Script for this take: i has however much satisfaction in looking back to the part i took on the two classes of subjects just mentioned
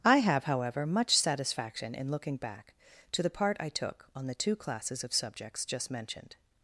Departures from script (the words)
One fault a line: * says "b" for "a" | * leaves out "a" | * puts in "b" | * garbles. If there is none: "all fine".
* says "have" for "has"